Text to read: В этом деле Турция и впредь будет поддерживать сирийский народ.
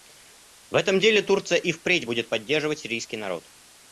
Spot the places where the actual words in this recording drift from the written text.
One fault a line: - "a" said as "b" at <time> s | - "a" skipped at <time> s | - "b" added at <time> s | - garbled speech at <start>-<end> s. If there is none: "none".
none